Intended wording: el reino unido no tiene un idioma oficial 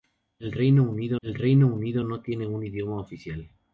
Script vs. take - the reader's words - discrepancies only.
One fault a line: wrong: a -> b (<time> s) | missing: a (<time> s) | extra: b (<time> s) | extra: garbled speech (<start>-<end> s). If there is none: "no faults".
extra: el reino unido (1.2 s)